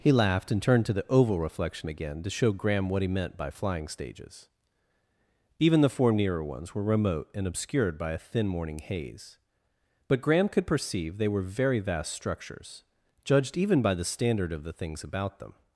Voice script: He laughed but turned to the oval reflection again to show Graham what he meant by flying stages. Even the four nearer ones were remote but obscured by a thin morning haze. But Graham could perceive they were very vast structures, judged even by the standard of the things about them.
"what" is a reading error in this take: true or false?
false